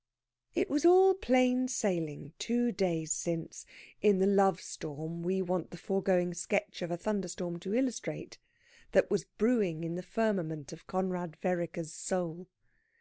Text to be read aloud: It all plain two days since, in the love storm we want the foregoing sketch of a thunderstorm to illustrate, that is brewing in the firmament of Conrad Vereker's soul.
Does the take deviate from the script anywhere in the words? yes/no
yes